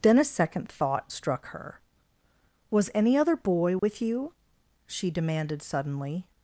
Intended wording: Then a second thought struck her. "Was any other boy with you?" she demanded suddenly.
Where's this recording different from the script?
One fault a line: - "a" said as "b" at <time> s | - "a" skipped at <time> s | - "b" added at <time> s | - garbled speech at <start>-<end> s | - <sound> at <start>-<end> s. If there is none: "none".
- dropout at 3.8-3.8 s